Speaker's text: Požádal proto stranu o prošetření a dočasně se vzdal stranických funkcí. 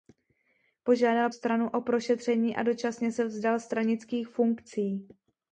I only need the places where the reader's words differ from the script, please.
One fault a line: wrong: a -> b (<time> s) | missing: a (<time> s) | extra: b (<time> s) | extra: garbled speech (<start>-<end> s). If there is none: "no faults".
missing: proto (1.3 s)